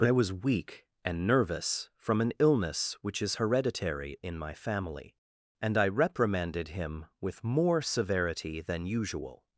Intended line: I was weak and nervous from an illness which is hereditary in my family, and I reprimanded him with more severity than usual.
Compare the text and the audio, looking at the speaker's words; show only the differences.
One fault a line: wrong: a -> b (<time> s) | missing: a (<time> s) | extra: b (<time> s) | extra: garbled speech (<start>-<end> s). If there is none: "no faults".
extra: but (0.0 s)